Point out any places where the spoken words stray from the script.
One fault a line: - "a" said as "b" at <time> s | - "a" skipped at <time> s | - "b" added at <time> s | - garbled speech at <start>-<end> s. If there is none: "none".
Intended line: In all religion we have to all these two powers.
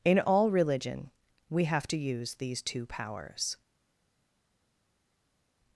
- "all" said as "use" at 2.0 s